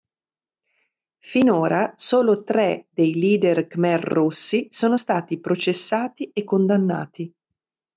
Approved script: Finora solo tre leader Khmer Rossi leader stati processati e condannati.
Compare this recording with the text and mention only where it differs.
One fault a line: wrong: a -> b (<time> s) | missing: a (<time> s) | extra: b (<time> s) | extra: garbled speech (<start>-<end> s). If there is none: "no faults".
extra: dei (2.9 s)
wrong: leader -> sono (4.7 s)